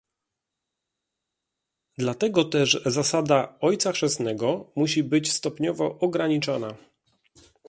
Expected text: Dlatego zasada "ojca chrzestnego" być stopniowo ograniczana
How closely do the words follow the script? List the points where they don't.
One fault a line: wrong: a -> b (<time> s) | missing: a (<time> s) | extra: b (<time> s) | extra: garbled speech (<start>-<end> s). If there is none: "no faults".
extra: też (2.4 s)
extra: musi (4.8 s)